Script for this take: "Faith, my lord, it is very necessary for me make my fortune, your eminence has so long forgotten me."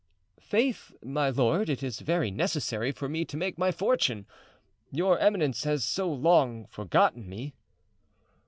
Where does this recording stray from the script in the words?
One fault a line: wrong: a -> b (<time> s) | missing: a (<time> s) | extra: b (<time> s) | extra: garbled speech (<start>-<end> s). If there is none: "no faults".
extra: to (3.2 s)